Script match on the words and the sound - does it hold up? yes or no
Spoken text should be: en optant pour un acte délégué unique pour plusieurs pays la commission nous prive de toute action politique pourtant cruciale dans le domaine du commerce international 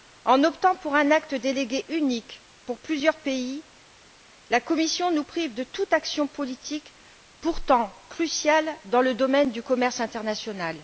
yes